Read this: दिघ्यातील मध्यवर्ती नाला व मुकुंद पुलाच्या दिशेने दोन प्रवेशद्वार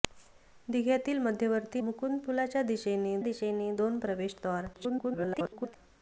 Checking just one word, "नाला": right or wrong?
wrong